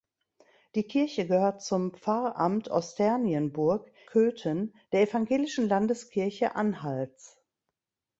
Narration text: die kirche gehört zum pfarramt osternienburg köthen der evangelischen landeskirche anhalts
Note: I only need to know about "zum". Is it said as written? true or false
true